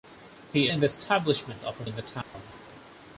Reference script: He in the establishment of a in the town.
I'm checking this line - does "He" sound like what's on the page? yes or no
yes